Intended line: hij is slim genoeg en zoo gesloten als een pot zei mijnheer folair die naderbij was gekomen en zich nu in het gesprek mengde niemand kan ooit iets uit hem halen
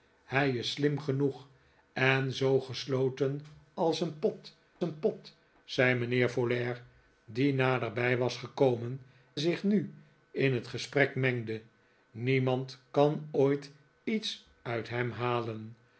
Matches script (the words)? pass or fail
fail